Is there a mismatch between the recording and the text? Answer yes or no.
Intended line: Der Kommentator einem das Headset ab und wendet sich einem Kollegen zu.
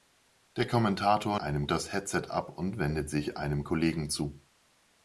no